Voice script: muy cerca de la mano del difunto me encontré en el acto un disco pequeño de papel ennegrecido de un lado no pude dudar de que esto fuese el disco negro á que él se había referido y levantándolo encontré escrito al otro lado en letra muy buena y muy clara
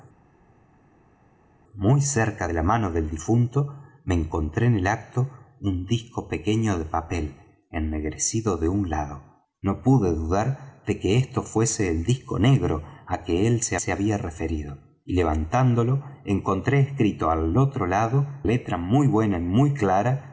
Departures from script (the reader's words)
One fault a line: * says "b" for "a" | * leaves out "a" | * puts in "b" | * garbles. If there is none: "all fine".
* puts in "se"
* leaves out "en"